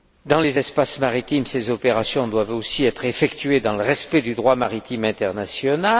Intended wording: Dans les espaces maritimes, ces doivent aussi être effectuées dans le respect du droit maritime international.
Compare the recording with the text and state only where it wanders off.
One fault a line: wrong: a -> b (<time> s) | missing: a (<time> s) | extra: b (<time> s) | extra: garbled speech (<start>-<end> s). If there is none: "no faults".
extra: opérations (1.7 s)